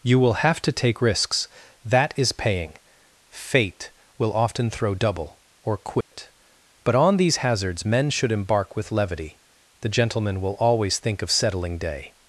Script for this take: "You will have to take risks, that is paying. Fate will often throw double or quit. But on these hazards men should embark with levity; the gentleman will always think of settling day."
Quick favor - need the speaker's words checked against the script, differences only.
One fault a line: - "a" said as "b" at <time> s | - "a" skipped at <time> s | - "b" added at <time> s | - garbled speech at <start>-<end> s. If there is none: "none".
none